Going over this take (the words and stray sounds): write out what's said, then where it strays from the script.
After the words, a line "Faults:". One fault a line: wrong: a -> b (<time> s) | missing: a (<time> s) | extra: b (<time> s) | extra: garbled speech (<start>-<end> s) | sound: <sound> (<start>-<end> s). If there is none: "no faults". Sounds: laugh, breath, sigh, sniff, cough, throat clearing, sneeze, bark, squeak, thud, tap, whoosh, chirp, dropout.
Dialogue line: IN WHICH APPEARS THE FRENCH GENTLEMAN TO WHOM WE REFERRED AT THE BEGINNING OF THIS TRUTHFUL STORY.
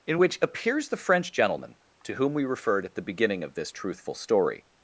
IN WHICH APPEARS THE FRENCH GENTLEMAN TO WHOM WE REFERRED AT THE BEGINNING OF THIS TRUTHFUL STORY.
Faults:
no faults